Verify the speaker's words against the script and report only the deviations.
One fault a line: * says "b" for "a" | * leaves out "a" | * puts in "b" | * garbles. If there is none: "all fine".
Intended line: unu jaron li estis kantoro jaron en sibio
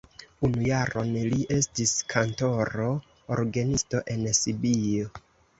* says "orgenisto" for "jaron"